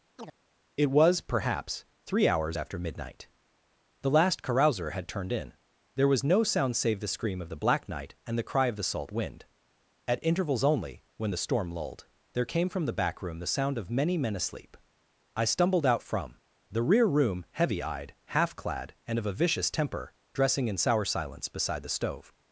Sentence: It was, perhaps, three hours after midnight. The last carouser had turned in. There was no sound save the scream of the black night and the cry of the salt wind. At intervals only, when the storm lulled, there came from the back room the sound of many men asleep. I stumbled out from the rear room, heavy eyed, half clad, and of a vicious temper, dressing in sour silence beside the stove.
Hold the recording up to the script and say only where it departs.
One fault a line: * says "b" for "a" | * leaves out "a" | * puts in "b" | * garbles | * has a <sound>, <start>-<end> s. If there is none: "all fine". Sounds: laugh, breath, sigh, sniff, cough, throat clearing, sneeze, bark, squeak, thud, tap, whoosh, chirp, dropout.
* has a chirp, 0.2-0.4 s